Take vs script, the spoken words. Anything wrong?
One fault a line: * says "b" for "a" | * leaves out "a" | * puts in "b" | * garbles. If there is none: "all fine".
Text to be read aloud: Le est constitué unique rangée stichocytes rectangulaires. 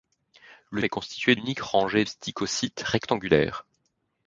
all fine